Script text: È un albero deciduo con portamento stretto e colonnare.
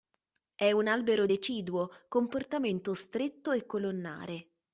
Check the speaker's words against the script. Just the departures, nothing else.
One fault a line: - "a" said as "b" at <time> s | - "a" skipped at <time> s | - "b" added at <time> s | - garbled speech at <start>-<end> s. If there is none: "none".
none